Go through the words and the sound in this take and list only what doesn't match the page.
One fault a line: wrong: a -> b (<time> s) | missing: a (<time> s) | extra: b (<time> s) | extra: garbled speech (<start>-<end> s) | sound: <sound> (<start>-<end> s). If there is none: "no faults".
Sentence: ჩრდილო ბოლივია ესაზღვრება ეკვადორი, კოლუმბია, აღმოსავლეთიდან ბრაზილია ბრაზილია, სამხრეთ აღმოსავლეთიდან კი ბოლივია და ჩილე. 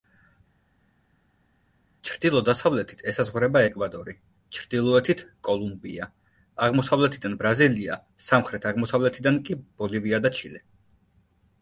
wrong: ბოლივია -> დასავლეთით (2.5 s)
extra: ჩრდილოეთით (4.6 s)
missing: ბრაზილია (8.0 s)